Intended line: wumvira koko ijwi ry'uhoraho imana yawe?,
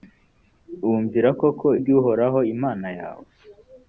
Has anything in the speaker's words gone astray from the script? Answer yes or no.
yes